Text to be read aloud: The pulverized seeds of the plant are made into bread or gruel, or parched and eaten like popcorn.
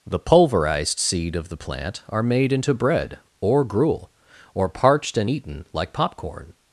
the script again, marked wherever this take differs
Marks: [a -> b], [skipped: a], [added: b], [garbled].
The pulverized [seeds -> seed] of the plant are made into bread or gruel, or parched and eaten like popcorn.